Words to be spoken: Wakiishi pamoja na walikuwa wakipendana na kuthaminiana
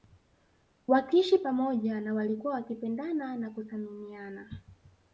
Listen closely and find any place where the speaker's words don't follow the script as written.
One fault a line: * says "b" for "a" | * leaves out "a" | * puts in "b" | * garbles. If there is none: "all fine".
all fine